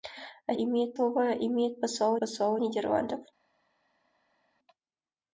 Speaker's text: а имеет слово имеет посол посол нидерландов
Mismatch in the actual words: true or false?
false